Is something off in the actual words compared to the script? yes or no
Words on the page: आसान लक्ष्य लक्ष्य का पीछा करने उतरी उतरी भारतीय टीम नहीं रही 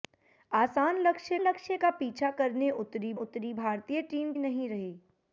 no